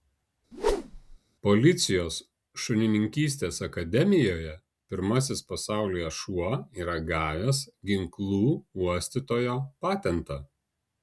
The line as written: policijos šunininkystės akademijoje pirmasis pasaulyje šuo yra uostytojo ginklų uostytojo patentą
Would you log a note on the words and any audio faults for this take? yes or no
yes